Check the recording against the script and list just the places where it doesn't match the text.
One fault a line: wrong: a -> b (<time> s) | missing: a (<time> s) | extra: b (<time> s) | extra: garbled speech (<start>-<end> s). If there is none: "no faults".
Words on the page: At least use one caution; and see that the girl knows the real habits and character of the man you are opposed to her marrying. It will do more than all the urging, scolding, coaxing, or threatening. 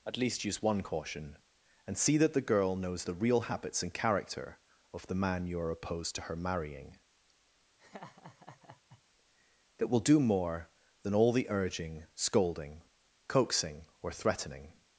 no faults